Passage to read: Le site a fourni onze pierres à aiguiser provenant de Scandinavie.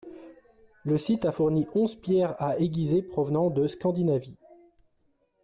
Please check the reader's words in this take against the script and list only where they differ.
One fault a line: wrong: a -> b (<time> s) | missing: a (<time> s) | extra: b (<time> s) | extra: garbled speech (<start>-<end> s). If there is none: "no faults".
no faults